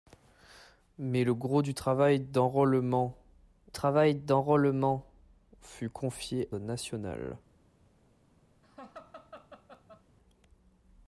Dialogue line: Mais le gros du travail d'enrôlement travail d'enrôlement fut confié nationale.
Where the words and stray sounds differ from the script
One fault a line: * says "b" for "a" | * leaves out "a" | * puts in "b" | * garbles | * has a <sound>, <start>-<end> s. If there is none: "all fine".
* has a laugh, 8.6-10.0 s